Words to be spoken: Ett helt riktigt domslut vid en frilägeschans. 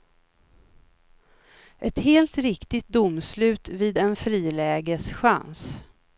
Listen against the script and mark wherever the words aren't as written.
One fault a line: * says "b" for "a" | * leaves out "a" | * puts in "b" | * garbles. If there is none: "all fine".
all fine